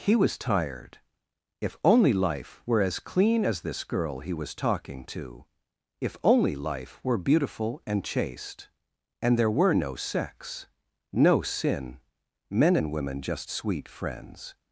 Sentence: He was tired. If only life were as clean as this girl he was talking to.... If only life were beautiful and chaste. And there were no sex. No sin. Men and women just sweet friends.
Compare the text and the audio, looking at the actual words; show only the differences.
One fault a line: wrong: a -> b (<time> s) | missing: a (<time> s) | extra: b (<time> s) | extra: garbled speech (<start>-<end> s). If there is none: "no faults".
no faults